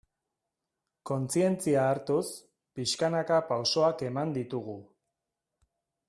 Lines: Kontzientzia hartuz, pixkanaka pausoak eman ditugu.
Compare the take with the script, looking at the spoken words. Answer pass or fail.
pass